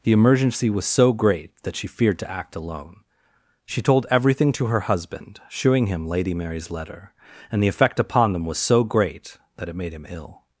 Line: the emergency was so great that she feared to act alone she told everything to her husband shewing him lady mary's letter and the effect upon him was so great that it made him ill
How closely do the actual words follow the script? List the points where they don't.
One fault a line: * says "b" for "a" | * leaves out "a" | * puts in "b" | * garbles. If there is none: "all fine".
* says "them" for "him"